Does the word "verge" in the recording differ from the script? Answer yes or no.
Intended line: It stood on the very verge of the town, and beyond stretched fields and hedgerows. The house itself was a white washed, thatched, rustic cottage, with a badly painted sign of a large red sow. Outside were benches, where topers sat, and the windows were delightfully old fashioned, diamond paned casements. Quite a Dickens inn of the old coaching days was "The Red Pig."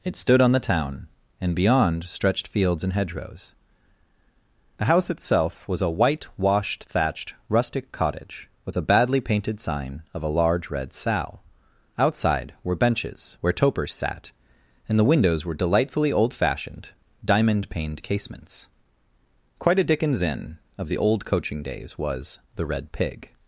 yes